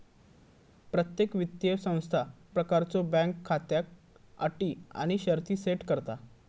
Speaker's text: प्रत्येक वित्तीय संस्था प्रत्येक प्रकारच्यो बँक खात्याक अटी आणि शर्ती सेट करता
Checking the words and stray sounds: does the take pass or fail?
fail